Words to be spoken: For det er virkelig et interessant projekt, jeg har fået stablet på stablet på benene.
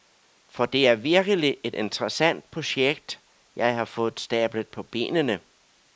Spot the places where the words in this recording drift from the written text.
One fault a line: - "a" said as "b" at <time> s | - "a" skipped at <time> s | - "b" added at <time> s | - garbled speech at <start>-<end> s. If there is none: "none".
- "stablet på" skipped at 4.8 s